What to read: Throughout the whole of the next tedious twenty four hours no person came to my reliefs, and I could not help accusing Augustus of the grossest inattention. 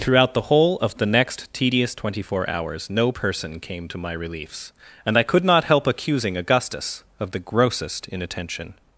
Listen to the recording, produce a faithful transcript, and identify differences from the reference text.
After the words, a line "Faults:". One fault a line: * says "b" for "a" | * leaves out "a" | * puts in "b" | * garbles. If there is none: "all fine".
Throughout the whole of the next tedious twenty four hours no person came to my reliefs, and I could not help accusing Augustus of the grossest inattention.
Faults:
all fine